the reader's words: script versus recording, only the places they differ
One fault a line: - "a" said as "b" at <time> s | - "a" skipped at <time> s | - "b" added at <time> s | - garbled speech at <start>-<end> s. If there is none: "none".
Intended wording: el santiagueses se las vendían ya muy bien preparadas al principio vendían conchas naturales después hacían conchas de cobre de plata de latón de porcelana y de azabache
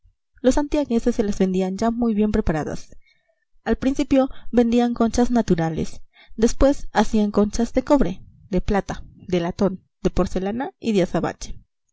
- "el" said as "los" at 0.4 s